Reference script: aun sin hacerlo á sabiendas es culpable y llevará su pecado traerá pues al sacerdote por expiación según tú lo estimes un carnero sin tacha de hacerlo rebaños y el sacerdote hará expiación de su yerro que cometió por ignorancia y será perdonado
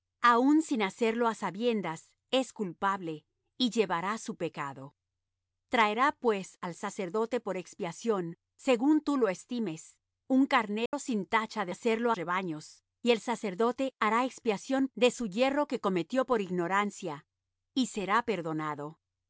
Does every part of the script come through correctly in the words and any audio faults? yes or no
no